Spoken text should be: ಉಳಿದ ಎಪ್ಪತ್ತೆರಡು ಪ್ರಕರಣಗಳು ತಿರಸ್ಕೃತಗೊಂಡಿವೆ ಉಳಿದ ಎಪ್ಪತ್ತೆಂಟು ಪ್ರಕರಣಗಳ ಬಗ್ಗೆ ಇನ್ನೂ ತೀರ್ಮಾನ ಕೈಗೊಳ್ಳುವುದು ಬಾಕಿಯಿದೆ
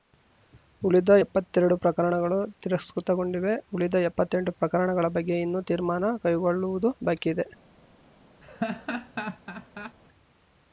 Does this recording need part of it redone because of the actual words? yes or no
no